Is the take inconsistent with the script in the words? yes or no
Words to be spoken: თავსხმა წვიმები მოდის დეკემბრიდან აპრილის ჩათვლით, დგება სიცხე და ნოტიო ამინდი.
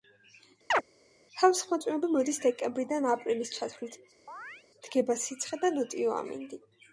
no